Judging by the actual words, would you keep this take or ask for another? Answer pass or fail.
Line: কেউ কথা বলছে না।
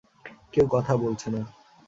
pass